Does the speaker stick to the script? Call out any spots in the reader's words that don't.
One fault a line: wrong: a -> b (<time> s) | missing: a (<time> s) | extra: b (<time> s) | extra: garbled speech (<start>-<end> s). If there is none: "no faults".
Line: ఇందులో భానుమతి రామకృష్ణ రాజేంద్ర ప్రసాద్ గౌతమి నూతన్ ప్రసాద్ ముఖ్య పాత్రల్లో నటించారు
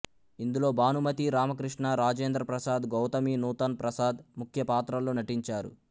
no faults